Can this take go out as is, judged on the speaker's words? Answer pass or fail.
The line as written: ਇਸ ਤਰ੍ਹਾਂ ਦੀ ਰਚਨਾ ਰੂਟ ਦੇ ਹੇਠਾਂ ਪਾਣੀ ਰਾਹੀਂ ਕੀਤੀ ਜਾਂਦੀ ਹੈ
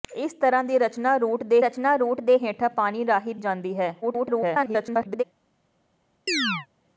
fail